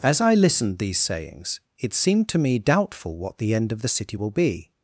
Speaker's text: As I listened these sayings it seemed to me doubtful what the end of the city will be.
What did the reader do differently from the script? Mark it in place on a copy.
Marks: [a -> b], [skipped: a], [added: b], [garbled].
As I listened these sayings it seemed to me doubtful what the end of the city will be.